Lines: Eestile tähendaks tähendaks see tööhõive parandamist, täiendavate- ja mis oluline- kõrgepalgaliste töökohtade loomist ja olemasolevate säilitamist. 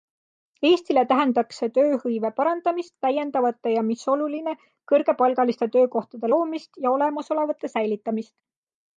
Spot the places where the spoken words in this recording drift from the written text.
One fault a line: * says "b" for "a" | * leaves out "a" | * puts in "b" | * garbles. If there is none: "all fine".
* leaves out "tähendaks"